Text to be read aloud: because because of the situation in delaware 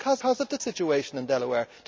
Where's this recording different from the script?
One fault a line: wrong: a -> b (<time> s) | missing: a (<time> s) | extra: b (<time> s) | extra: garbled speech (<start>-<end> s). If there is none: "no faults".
no faults